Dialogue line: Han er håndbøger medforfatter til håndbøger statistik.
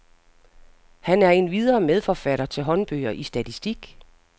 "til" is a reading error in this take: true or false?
false